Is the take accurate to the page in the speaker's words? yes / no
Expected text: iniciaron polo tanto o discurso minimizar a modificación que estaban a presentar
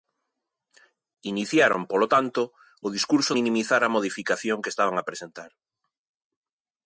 yes